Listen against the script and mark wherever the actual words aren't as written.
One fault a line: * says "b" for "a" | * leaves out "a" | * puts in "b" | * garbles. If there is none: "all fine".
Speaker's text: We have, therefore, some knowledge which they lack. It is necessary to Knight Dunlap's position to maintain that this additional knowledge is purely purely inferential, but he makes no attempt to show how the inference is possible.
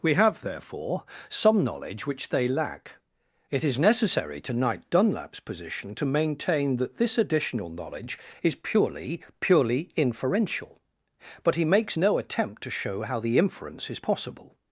all fine